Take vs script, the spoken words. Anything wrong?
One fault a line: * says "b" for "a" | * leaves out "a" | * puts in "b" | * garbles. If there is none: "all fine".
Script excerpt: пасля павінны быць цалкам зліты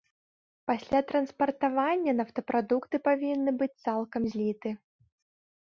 * puts in "транспартавання нафтапрадукты"